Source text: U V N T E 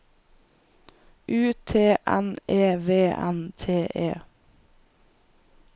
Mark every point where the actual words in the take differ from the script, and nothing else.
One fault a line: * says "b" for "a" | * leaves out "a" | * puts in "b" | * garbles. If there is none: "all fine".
* puts in "T N E"